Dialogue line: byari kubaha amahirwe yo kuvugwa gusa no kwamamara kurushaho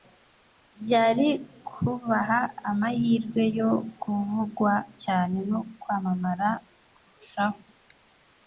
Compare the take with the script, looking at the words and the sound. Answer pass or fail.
fail